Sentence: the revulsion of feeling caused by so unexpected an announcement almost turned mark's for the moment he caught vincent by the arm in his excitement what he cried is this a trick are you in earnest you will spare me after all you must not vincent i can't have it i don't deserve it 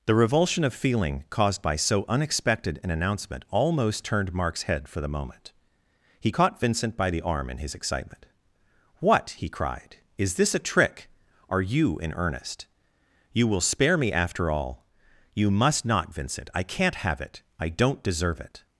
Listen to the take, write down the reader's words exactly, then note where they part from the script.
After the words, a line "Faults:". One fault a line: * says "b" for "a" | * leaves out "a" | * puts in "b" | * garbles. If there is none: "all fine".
the revulsion of feeling caused by so unexpected an announcement almost turned mark's head for the moment he caught vincent by the arm in his excitement what he cried is this a trick are you in earnest you will spare me after all you must not vincent i can't have it i don't deserve it
Faults:
* puts in "head"